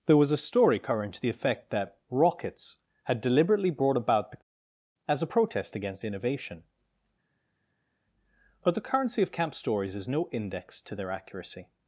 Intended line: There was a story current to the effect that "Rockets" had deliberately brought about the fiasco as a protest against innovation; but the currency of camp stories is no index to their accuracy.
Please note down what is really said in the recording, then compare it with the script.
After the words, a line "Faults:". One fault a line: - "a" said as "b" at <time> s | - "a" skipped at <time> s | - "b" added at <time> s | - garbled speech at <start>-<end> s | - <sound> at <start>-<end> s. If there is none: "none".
There was a story current to the effect that "Rockets" had deliberately brought about the as a protest against innovation; but the currency of camp stories is no index to their accuracy.
Faults:
- "fiasco" skipped at 4.4 s